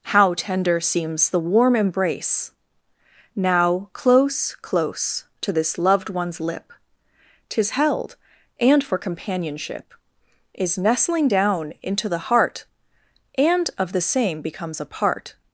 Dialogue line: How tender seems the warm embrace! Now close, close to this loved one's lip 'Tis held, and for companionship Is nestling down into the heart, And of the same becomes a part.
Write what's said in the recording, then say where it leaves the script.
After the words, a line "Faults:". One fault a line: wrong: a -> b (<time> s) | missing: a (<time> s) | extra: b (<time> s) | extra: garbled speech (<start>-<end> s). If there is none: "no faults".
How tender seems the warm embrace! Now close, close to this loved one's lip 'Tis held, and for companionship Is nestling down into the heart, And of the same becomes a part.
Faults:
no faults